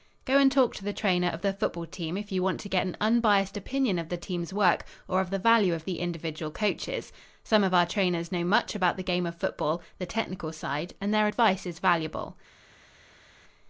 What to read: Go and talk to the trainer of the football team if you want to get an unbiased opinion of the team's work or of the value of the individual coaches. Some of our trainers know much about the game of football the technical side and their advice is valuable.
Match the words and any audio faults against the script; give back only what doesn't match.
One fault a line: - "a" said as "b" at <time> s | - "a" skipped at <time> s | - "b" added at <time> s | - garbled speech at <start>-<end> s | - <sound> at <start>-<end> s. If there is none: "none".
none